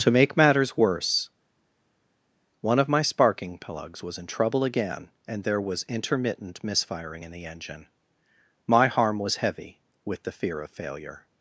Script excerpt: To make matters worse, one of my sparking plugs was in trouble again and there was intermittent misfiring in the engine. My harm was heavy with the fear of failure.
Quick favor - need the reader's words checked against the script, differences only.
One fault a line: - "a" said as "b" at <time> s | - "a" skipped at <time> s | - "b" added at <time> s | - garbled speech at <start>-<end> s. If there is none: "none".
none